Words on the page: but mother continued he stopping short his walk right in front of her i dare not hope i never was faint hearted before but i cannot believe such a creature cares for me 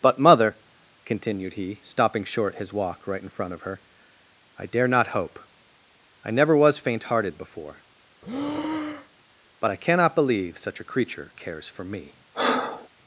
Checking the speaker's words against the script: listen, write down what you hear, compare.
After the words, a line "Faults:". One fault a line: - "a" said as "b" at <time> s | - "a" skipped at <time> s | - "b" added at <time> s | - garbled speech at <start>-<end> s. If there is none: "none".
but mother continued he stopping short his walk right in front of her i dare not hope i never was faint hearted before but i cannot believe such a creature cares for me
Faults:
none